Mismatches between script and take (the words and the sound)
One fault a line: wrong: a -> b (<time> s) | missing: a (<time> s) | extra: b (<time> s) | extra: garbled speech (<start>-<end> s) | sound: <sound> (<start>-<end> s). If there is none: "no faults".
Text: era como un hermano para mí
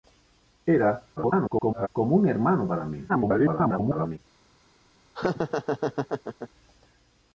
extra: garbled speech (1.2-1.9 s)
extra: garbled speech (3.1-4.2 s)
sound: laugh (5.1-6.5 s)